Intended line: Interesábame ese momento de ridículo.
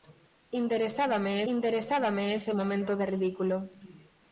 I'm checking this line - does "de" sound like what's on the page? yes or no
yes